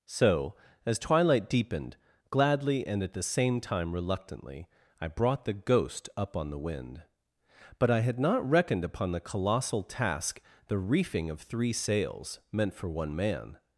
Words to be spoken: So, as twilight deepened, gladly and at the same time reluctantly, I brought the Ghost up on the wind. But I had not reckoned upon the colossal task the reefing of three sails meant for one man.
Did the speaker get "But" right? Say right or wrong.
right